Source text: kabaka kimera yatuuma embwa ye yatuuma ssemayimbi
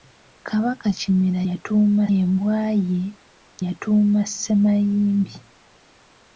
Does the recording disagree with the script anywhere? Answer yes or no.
no